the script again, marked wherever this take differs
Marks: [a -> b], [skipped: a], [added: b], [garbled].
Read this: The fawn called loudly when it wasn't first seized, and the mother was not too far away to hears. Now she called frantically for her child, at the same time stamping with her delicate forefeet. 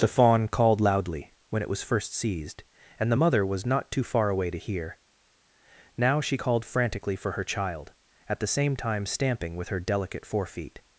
The fawn called loudly when it [wasn't -> was] first seized, and the mother was not too far away to [hears. -> hear] Now she called frantically for her child, at the same time stamping with her delicate forefeet.